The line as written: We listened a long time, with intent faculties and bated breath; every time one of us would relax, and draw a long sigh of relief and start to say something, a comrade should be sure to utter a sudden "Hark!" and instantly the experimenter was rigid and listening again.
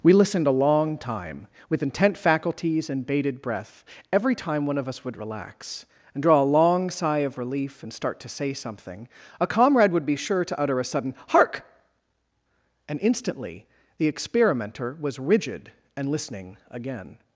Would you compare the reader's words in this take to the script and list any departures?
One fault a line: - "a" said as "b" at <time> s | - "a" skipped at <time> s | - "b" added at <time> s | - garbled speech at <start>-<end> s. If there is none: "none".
- "should" said as "would" at 9.9 s